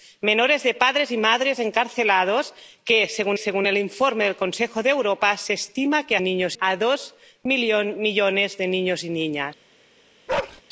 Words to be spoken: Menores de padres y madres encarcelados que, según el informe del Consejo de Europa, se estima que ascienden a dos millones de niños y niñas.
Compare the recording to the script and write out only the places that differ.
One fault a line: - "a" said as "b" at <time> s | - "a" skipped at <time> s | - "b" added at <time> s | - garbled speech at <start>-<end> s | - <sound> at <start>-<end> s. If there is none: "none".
- "según" added at 3.3 s
- "ascienden" said as "niños" at 6.2 s
- bark at 10.3-10.6 s